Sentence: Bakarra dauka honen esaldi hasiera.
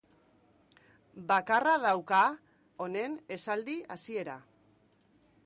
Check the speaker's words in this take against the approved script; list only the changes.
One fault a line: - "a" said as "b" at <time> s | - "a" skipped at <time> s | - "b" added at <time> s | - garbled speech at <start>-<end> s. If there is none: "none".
none